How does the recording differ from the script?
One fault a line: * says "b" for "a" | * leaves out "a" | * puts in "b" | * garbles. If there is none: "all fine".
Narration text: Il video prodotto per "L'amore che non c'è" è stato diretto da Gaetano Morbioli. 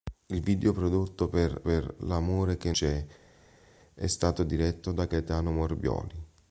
* puts in "per"
* leaves out "non"